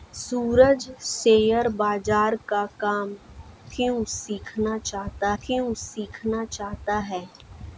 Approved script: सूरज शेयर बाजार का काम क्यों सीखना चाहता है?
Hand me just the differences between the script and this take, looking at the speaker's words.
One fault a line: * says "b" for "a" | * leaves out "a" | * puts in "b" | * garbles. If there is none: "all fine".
* puts in "क्यों सीखना चाहता"